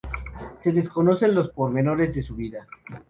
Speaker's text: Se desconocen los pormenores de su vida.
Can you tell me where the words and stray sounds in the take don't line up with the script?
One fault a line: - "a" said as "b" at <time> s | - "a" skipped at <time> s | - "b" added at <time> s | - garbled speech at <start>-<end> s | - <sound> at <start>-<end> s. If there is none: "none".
none